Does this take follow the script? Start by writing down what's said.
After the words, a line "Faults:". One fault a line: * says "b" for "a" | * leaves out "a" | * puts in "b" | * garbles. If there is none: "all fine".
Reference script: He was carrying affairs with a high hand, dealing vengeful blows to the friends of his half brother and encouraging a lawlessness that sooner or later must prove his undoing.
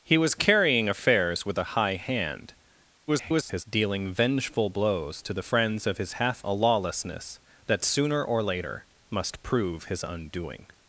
He was carrying affairs with a high hand, [garbled] dealing vengeful blows to the friends of his half a lawlessness that sooner or later must prove his undoing.
Faults:
* garbles
* leaves out "brother and encouraging"